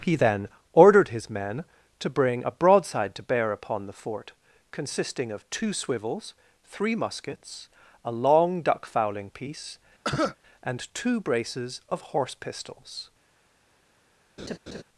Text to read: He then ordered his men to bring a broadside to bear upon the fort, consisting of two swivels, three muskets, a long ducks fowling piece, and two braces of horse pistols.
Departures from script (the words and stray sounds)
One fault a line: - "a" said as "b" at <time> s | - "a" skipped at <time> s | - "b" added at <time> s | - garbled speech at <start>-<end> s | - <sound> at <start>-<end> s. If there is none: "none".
- "ducks" said as "duck" at 8.6 s
- cough at 10.0-10.4 s
- laugh at 14.4-14.8 s